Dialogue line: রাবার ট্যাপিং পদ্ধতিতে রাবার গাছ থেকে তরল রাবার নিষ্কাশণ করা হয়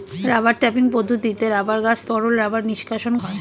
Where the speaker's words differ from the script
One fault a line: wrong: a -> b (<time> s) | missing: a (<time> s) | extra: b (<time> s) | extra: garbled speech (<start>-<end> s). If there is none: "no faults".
missing: থেকে (2.0 s)
missing: করা (3.1 s)